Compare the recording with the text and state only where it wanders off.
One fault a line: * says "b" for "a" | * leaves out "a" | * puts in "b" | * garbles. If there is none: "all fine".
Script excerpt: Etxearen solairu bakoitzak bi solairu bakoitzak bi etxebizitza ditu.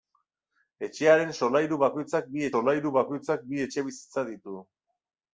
all fine